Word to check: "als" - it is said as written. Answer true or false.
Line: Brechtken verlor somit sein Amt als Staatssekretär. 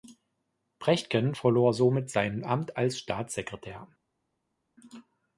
true